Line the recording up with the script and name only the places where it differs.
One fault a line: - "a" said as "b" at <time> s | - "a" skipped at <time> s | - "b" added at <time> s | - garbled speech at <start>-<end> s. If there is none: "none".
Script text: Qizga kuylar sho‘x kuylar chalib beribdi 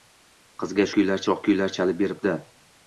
none